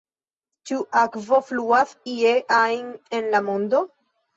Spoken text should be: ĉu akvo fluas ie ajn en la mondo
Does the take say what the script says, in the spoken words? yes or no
yes